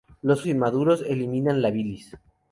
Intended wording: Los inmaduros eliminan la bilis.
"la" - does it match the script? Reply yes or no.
yes